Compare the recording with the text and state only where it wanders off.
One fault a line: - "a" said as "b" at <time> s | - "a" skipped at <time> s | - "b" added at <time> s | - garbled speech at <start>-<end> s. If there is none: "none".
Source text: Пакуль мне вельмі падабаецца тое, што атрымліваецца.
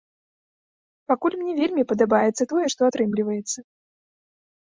none